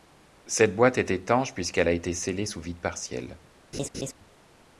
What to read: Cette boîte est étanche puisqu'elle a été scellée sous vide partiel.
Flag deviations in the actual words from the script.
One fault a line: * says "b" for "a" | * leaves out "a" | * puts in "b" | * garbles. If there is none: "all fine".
all fine